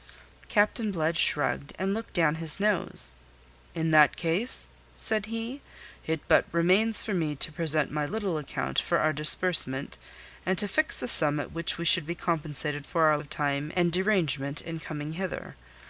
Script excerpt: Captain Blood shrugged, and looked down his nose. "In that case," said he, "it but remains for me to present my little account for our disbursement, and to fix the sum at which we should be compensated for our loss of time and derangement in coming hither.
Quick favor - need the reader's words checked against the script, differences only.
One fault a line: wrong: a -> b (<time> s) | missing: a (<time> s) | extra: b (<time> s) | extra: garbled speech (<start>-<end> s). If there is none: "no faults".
missing: loss (13.2 s)